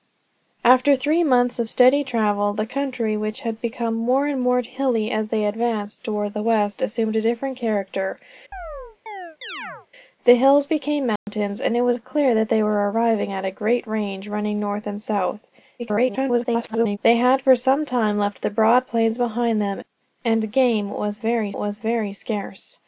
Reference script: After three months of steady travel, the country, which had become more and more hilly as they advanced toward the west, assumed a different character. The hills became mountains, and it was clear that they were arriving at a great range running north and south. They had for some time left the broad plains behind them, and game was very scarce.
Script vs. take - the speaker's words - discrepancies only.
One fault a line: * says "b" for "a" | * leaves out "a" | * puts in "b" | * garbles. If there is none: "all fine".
* garbles
* puts in "was very"